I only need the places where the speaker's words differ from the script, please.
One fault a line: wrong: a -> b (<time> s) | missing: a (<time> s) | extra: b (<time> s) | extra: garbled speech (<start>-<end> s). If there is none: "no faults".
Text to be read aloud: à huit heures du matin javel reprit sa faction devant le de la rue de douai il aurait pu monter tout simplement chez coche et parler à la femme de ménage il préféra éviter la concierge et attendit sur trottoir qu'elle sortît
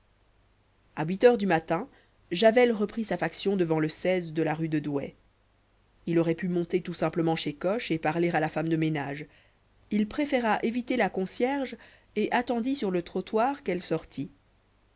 extra: le (12.9 s)